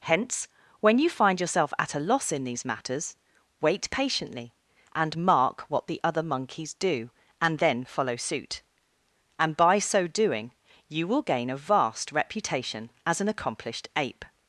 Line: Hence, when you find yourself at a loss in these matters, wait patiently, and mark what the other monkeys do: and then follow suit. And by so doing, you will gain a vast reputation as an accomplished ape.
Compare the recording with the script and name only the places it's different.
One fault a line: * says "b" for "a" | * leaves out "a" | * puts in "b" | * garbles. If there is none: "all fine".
all fine